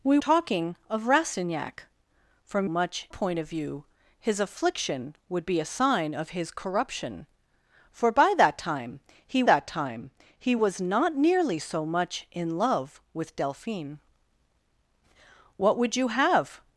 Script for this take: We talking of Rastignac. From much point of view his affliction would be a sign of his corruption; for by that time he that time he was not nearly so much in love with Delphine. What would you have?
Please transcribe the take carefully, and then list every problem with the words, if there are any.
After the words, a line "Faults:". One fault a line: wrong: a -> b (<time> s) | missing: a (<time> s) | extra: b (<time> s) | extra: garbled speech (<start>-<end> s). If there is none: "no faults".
We talking of Rastignac. From much point of view his affliction would be a sign of his corruption; for by that time he that time he was not nearly so much in love with Delphine. What would you have?
Faults:
no faults